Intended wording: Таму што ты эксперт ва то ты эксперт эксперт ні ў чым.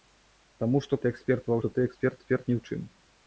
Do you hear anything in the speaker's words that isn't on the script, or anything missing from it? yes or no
no